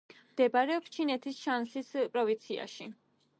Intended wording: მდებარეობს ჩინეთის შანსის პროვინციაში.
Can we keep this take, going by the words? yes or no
yes